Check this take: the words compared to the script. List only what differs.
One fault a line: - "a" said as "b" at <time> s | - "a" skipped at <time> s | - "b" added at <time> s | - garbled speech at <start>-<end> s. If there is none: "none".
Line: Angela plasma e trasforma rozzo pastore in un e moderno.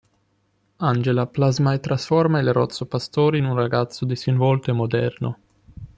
- "il" added at 2.4 s
- "ragazzo disinvolto" added at 3.5 s